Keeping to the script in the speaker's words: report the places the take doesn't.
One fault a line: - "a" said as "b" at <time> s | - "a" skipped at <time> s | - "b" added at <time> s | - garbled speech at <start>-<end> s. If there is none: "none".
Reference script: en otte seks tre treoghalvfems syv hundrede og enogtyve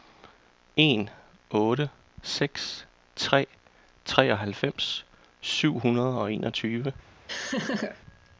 none